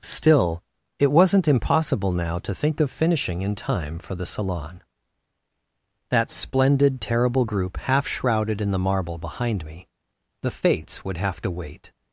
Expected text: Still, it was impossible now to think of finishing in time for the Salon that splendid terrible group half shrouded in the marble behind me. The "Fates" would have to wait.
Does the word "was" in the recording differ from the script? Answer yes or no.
yes